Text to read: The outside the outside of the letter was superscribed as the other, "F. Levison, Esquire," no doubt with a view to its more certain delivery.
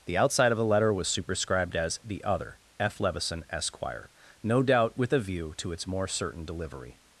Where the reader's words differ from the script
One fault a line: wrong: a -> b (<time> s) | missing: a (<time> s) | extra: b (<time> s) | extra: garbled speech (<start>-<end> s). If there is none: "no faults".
missing: the outside (0.5 s)